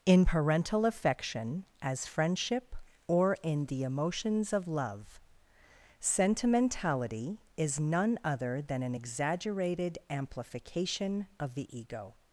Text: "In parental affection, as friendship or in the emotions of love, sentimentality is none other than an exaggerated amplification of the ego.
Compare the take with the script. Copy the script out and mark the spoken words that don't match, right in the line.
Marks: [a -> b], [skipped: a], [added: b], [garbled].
"In parental affection, as friendship or in the emotions of love, sentimentality is none other than an exaggerated amplification of the ego.